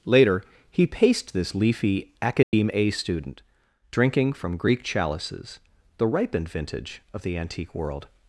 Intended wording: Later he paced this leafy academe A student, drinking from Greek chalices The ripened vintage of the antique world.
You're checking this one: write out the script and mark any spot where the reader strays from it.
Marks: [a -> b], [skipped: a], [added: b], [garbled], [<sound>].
Later he paced this leafy academe [dropout] A student, drinking from Greek chalices The ripened vintage of the antique world.